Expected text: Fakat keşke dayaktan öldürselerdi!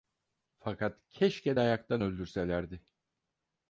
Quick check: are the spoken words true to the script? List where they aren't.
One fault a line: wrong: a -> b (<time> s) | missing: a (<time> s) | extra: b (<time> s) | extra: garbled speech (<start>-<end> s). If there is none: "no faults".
no faults